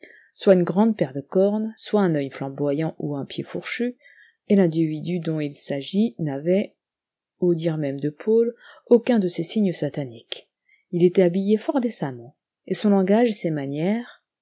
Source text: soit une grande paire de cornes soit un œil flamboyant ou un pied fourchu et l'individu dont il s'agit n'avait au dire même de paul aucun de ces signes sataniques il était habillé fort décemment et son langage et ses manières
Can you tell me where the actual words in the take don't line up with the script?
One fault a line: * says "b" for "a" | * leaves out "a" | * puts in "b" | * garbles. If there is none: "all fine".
all fine